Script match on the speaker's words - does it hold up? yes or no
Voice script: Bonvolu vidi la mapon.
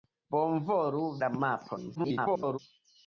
no